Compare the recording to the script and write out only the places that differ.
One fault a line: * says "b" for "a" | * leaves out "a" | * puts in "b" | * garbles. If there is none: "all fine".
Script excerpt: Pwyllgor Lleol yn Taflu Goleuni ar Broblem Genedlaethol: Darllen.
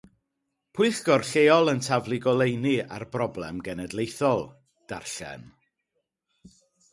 all fine